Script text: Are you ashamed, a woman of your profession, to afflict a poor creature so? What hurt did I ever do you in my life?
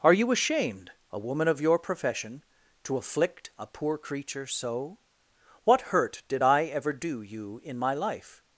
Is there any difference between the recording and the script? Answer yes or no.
no